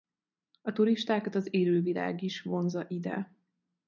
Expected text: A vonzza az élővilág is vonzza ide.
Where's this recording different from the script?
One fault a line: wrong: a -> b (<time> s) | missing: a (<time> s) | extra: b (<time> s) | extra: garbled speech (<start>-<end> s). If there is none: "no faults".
wrong: vonzza -> turistákat (0.7 s)